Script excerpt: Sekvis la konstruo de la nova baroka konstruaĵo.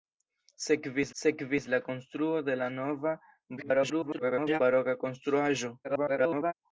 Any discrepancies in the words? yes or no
yes